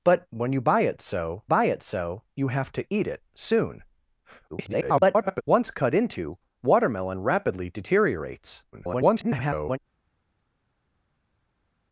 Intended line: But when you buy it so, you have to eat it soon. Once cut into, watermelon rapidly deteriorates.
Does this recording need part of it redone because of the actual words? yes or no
yes